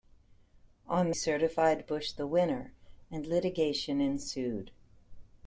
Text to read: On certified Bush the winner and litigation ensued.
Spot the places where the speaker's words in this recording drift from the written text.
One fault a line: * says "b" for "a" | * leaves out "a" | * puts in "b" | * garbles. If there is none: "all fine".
all fine